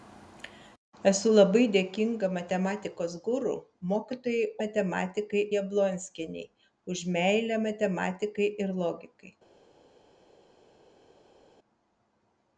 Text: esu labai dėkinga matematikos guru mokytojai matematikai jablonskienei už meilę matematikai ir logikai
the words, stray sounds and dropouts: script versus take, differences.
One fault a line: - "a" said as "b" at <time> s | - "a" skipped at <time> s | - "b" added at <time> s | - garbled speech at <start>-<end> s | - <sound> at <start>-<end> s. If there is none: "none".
none